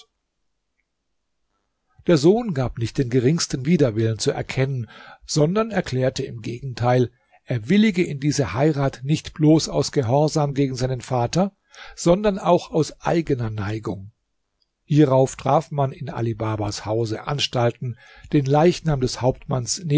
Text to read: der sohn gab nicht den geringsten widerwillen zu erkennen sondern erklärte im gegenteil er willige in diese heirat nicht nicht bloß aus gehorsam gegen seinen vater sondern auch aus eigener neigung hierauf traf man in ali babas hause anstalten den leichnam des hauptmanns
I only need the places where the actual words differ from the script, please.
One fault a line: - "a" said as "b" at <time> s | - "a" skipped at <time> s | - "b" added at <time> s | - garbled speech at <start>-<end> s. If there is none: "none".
- "nicht" skipped at 9.3 s